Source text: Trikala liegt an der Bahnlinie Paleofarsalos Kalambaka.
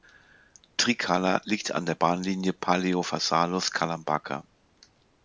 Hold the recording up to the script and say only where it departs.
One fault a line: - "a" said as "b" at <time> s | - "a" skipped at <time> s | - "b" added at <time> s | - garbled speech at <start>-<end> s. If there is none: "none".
none